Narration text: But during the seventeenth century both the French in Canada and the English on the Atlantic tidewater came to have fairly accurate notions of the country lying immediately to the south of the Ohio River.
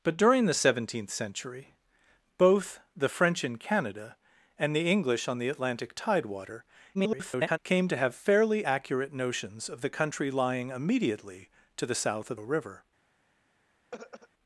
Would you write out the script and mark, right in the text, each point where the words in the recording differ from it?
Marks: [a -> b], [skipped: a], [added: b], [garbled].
But during the seventeenth century both the French in Canada and the English on the Atlantic tidewater [garbled] came to have fairly accurate notions of the country lying immediately to the south of [skipped: the Ohio] River.